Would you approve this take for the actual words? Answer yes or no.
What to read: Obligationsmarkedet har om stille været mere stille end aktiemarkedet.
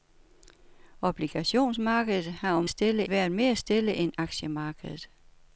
yes